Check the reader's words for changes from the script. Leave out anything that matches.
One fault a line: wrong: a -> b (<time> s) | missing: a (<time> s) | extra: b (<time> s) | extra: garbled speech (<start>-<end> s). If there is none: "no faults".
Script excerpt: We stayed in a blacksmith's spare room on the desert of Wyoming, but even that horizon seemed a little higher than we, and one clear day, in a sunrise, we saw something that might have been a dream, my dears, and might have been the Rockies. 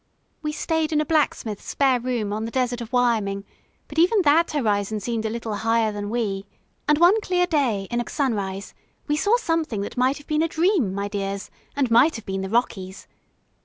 no faults